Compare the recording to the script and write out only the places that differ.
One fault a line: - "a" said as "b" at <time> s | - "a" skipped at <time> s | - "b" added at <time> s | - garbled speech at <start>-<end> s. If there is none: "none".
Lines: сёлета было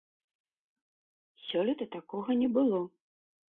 - "такога не" added at 2.0 s